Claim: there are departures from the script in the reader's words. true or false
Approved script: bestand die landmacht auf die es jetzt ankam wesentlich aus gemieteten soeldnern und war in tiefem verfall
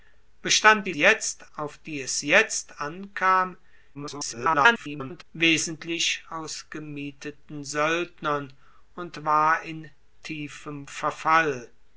true